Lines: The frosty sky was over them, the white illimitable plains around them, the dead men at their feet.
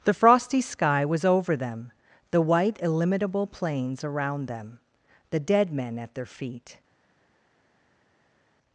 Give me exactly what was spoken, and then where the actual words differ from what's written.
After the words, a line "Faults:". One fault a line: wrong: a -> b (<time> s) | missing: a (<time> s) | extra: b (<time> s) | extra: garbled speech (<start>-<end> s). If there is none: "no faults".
The frosty sky was over them, the white illimitable plains around them, the dead men at their feet.
Faults:
no faults